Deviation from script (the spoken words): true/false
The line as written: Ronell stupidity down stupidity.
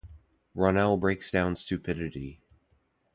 true